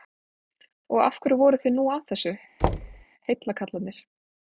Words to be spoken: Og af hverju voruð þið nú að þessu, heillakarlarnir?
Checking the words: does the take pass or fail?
pass